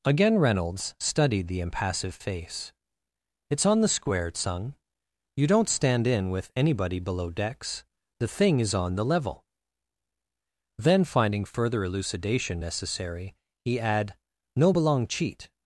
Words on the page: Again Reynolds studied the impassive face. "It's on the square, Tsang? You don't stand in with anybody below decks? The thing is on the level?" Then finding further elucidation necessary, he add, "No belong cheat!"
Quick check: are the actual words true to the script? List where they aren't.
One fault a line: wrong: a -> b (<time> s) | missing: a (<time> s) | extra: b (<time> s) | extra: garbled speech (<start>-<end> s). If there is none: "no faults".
no faults